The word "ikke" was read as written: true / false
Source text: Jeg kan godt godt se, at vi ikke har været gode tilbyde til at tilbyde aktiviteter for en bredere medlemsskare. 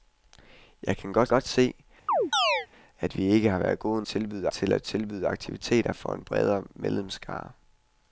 true